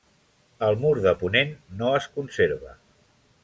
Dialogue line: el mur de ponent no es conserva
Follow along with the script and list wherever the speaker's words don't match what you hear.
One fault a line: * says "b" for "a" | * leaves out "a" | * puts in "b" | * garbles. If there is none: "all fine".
all fine